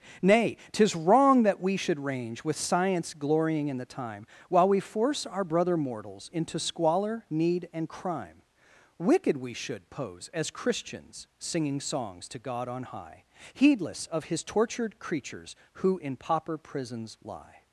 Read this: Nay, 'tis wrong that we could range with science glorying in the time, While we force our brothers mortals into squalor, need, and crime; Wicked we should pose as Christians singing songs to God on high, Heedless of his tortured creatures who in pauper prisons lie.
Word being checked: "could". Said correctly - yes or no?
no